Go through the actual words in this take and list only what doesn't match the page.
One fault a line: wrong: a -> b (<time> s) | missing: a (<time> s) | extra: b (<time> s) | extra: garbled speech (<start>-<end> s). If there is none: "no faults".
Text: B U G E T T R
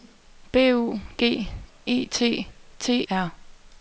no faults